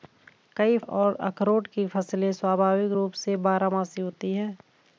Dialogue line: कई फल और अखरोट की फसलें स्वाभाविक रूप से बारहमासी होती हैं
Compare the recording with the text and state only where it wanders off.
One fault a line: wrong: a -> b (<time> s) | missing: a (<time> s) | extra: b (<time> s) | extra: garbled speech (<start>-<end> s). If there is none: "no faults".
missing: फल (0.8 s)